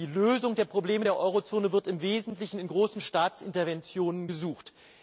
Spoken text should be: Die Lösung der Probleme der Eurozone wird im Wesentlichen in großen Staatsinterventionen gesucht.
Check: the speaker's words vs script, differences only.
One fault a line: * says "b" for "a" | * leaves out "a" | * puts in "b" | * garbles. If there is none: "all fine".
all fine